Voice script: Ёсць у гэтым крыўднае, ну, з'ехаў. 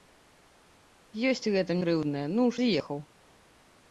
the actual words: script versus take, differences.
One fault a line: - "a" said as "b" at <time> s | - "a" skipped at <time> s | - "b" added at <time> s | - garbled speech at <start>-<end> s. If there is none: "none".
none